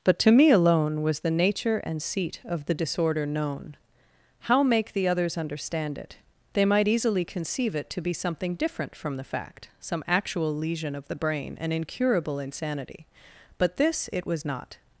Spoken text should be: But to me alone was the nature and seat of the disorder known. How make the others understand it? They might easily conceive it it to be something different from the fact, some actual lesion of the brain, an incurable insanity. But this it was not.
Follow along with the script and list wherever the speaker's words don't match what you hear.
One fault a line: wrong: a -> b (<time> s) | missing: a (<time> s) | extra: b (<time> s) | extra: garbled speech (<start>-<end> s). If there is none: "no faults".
missing: it (7.9 s)